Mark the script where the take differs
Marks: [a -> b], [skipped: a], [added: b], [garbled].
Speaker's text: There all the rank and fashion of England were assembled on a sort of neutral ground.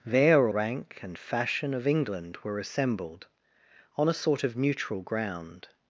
There [skipped: all the] rank and fashion of England were assembled on a sort of neutral ground.